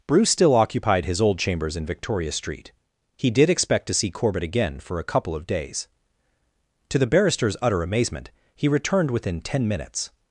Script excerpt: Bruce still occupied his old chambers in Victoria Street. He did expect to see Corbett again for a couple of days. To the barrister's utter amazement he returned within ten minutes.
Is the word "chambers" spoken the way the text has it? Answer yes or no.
yes